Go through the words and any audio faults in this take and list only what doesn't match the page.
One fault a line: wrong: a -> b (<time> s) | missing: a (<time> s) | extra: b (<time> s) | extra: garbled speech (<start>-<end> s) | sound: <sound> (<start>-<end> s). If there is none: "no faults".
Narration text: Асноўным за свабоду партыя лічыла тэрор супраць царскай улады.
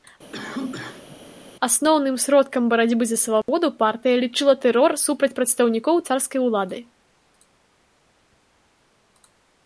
sound: cough (0.3-1.2 s)
extra: сродкам барацьбы (2.2 s)
sound: dropout (3.4-3.5 s)
extra: прадстаўнікоў (5.4 s)